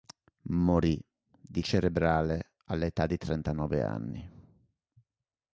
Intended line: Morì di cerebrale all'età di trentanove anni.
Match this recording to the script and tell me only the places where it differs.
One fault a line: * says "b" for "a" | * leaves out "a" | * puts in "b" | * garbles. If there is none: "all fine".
all fine